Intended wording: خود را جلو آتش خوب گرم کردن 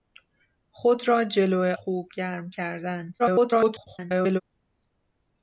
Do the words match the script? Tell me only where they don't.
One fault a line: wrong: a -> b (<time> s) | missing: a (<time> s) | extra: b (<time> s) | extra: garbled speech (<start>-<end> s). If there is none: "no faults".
missing: آتش (1.8 s)
extra: garbled speech (3.2-4.4 s)